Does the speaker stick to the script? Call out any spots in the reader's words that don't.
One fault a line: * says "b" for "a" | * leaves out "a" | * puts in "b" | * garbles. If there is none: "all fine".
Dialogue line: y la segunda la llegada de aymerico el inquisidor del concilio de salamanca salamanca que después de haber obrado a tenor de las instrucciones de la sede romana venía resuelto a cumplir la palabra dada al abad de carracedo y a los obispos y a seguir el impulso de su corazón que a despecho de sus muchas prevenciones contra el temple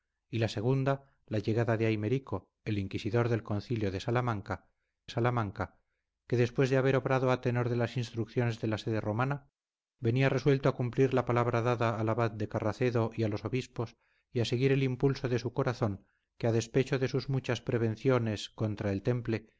all fine